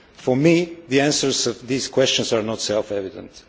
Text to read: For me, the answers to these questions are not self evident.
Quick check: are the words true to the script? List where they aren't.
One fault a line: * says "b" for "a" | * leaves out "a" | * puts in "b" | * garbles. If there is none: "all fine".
all fine